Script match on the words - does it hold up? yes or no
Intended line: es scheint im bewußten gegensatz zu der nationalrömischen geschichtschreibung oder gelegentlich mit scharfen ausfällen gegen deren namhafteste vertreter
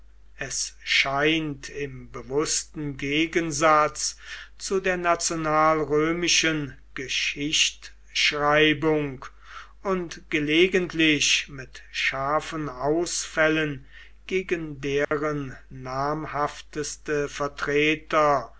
no